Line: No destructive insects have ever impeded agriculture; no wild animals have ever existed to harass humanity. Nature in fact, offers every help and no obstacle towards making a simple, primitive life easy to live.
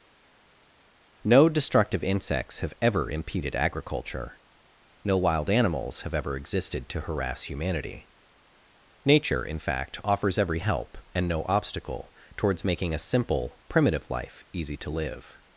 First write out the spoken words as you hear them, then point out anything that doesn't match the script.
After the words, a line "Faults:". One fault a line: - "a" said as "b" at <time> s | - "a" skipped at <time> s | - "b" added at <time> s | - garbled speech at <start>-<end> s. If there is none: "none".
No destructive insects have ever impeded agriculture; no wild animals have ever existed to harass humanity. Nature in fact, offers every help and no obstacle towards making a simple, primitive life easy to live.
Faults:
none